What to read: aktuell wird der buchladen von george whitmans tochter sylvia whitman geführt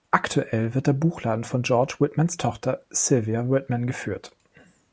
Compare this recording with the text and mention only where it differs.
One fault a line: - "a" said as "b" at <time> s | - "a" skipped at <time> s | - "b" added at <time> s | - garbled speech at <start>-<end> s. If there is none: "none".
none